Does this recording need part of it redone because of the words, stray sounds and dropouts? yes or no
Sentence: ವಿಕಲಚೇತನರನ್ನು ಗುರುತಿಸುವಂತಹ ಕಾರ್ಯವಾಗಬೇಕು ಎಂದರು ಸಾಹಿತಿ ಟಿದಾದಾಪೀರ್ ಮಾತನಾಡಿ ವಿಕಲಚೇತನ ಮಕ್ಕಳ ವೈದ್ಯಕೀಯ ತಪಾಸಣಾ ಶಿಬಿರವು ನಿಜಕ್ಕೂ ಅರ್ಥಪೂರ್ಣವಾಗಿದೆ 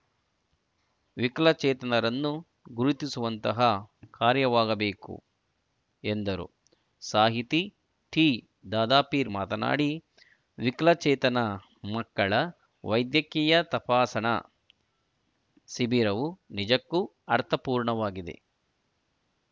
no